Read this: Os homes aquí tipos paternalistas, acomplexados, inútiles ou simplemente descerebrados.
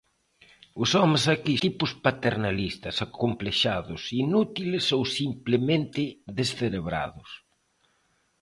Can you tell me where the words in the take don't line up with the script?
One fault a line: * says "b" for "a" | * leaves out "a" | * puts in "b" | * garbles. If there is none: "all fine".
all fine